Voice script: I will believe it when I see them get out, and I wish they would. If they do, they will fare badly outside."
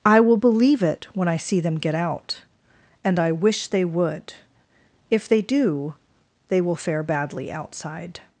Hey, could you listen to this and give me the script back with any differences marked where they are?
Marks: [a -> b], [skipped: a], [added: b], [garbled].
I will believe it when I see them get out, and I wish they would. If they do, they will fare badly outside."